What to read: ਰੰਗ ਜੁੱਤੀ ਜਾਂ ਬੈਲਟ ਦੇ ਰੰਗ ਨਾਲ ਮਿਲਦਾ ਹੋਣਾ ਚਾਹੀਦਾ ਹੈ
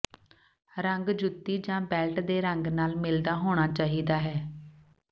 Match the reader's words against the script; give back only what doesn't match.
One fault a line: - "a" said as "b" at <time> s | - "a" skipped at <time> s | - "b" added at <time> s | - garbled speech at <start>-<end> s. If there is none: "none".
none